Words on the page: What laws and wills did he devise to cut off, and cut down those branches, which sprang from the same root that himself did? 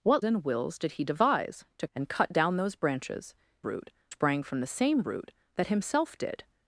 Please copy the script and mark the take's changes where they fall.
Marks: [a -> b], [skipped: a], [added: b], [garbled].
What [skipped: laws] and wills did he devise to [skipped: cut off,] and cut down those branches, [which -> root] sprang from the same root that himself did?